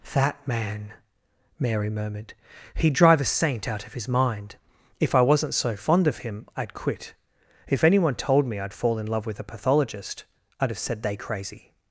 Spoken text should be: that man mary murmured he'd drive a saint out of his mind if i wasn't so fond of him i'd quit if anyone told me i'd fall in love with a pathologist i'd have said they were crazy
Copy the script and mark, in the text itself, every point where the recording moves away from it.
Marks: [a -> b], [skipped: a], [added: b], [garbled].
that man mary murmured he'd drive a saint out of his mind if i wasn't so fond of him i'd quit if anyone told me i'd fall in love with a pathologist i'd have said they [skipped: were] crazy